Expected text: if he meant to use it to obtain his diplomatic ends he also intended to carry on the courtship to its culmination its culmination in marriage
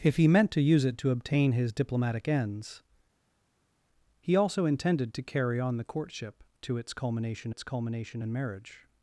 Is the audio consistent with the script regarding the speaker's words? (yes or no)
yes